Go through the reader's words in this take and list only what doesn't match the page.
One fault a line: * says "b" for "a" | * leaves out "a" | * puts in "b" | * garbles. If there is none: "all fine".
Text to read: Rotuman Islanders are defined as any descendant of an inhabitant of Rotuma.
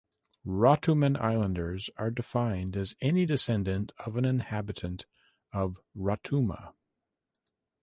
all fine